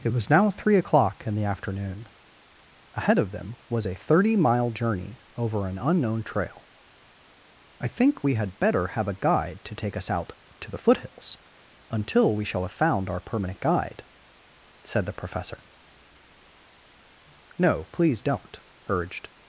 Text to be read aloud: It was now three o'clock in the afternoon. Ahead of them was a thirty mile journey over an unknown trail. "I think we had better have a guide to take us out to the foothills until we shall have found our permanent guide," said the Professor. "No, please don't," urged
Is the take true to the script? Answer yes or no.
yes